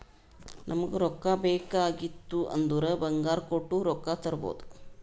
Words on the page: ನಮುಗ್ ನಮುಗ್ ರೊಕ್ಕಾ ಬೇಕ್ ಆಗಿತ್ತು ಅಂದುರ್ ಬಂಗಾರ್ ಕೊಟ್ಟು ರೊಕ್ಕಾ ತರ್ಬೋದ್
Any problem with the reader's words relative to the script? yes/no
yes